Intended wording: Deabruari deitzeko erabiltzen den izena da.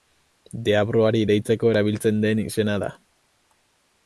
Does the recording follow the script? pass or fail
pass